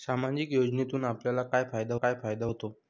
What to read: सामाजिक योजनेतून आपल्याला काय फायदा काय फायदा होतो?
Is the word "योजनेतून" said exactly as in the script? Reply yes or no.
yes